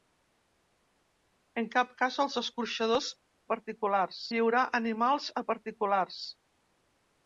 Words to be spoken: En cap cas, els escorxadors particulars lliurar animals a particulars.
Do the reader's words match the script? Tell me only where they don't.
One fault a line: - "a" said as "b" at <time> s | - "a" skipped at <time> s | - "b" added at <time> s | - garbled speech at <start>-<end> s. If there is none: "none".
none